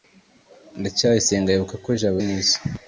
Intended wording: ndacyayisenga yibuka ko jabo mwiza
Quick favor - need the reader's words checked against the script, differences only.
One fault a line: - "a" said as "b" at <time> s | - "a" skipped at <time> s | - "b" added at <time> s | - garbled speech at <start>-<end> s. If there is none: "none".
none